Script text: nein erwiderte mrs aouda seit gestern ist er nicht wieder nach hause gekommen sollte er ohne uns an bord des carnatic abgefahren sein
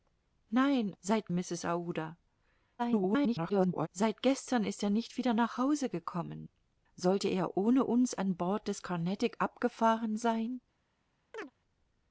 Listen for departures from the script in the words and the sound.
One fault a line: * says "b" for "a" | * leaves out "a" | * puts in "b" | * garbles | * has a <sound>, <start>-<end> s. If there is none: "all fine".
* says "seit" for "erwiderte"
* garbles
* has a chirp, 11.3-11.5 s